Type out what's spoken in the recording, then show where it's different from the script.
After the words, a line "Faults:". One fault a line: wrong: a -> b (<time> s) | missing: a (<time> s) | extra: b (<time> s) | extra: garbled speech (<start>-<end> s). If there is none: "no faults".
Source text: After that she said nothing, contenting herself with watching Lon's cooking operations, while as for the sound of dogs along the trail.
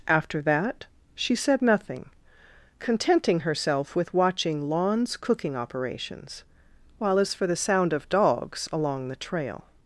After that she said nothing, contenting herself with watching Lon's cooking operations, while as for the sound of dogs along the trail.
Faults:
no faults